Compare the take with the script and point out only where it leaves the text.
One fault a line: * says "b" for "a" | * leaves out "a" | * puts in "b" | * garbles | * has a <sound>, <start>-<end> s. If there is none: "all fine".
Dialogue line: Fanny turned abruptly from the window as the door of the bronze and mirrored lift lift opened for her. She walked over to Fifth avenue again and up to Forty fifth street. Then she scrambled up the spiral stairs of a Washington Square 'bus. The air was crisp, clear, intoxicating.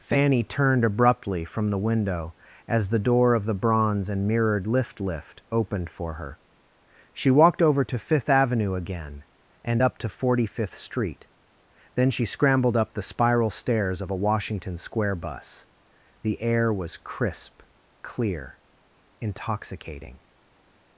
all fine